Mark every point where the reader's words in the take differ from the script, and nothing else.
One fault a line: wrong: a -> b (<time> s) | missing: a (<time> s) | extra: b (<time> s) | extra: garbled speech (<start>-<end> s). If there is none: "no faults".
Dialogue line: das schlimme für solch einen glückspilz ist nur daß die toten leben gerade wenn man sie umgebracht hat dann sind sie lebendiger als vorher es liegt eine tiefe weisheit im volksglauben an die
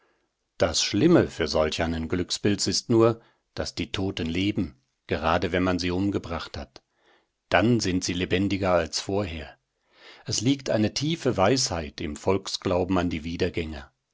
no faults